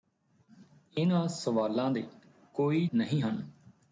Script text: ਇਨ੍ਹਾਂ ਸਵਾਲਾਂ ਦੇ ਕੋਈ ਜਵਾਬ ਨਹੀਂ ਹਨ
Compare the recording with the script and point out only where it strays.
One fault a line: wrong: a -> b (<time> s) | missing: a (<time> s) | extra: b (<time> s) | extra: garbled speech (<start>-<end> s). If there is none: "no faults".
missing: ਜਵਾਬ (2.9 s)